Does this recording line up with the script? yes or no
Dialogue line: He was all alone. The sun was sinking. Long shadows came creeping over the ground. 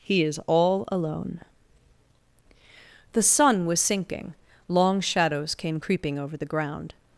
no